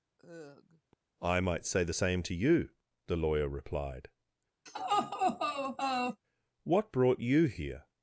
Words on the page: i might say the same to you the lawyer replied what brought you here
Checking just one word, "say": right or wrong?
right